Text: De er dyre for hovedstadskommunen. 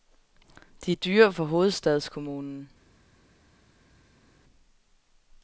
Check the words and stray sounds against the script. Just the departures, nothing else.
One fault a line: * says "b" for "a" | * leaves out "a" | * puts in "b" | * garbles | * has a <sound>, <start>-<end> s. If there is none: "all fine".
all fine